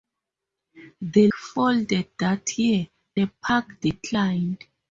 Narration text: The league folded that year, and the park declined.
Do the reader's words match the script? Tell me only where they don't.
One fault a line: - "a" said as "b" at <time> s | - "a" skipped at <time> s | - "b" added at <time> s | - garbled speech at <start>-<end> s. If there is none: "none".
- "league" skipped at 1.3 s
- "and" skipped at 2.9 s